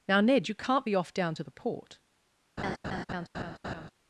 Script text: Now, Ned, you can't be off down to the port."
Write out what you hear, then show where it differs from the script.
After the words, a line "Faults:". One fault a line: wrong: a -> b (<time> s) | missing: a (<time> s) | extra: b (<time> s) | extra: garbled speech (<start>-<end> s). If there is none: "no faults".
Now, Ned, you can't be off down to the port."
Faults:
no faults